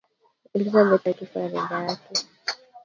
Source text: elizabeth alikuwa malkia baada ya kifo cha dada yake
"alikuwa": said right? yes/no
no